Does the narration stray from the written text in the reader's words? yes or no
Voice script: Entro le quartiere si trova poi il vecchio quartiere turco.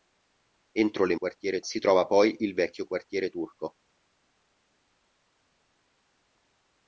no